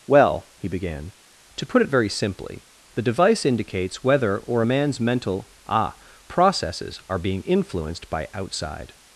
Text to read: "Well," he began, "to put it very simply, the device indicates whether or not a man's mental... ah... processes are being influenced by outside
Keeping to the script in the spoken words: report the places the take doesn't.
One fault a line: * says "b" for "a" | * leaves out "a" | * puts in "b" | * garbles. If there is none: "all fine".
* leaves out "not"